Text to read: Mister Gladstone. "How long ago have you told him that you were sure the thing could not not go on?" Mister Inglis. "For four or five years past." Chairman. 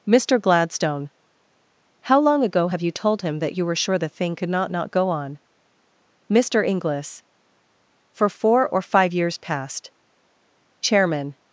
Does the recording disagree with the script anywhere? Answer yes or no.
no